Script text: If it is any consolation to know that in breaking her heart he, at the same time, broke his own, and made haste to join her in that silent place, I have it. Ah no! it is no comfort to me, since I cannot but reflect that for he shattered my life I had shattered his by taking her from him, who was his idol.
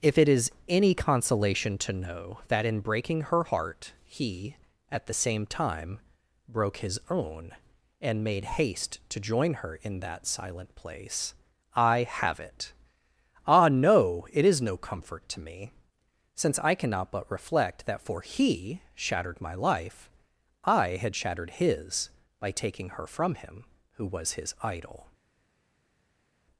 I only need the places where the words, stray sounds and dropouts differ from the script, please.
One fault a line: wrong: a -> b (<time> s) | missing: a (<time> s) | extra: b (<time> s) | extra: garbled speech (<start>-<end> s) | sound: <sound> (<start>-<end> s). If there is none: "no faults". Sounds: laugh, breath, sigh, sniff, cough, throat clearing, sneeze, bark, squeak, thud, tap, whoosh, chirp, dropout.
no faults